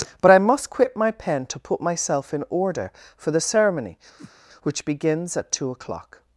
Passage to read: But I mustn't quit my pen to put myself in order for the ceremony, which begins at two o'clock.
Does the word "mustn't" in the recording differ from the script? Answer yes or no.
yes